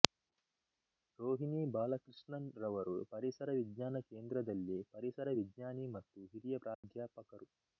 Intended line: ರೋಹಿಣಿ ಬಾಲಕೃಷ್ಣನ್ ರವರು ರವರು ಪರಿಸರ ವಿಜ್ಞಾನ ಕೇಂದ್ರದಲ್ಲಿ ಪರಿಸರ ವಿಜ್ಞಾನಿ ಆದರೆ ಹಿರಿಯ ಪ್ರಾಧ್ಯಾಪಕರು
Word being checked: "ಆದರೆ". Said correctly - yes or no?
no